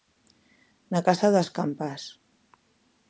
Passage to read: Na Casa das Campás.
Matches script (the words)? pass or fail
pass